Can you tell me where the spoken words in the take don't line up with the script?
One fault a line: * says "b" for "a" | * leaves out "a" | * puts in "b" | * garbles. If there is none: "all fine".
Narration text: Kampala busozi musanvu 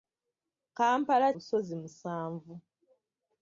all fine